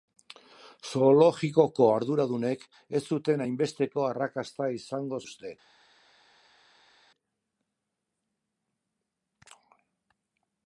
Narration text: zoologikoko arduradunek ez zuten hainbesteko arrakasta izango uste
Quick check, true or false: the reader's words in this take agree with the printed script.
true